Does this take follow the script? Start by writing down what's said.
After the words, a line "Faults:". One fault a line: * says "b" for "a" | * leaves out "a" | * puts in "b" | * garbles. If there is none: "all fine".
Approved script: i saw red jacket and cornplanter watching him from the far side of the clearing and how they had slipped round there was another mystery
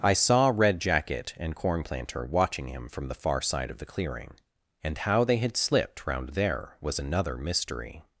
i saw red jacket and cornplanter watching him from the far side of the clearing and how they had slipped round there was another mystery
Faults:
all fine